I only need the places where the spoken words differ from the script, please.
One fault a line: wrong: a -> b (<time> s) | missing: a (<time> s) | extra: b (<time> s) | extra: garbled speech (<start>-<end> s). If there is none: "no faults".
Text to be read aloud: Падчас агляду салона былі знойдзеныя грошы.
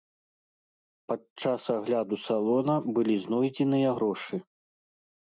no faults